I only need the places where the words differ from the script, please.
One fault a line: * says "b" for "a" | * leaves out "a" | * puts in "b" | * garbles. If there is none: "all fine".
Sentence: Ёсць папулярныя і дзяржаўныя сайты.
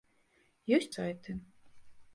* leaves out "папулярныя і дзяржаўныя"